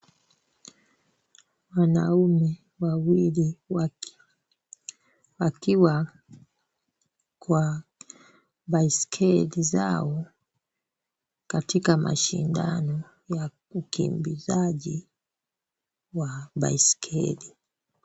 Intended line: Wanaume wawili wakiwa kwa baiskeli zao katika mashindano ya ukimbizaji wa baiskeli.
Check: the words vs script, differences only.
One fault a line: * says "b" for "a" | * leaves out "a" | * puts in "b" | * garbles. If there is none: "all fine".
all fine